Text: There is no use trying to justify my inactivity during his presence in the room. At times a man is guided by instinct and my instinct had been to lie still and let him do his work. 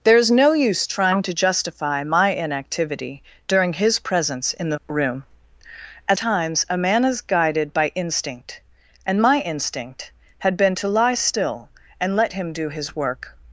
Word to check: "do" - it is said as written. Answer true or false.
true